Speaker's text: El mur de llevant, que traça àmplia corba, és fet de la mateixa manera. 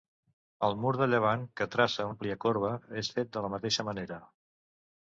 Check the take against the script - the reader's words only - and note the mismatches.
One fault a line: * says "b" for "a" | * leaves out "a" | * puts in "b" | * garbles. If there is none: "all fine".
all fine